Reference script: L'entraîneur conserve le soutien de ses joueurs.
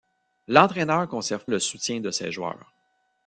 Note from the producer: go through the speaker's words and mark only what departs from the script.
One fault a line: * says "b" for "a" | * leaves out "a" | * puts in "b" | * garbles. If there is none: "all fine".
all fine